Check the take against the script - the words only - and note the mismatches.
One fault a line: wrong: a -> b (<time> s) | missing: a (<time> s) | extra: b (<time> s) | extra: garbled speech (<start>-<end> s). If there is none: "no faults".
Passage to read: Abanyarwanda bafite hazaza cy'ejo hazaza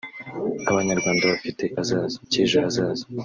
no faults